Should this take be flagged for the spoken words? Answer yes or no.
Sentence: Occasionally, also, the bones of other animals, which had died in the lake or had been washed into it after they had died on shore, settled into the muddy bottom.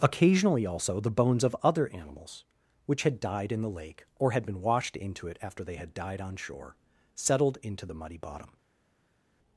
no